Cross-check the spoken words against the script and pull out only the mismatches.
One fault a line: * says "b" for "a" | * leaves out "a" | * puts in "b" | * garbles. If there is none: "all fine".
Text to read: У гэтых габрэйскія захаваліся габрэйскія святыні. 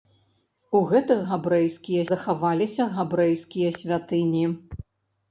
all fine